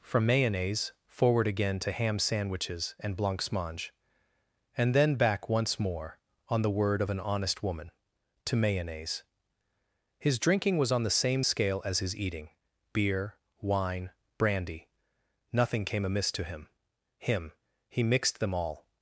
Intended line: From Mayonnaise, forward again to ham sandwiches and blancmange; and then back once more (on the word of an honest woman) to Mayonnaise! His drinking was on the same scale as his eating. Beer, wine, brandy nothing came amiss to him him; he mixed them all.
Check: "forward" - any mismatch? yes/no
no